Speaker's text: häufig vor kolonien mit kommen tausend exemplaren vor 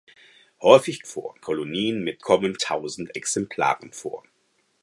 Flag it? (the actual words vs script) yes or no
no